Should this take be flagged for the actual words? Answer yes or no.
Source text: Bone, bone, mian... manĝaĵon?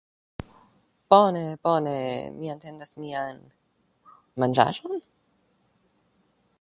yes